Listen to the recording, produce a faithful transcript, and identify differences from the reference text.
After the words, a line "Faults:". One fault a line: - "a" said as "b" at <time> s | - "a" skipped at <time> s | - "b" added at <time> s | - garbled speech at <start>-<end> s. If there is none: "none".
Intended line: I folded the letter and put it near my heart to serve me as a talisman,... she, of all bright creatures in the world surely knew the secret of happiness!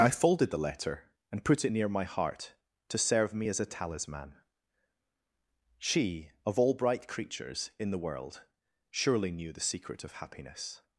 I folded the letter and put it near my heart to serve me as a talisman,... she, of all bright creatures in the world surely knew the secret of happiness!
Faults:
none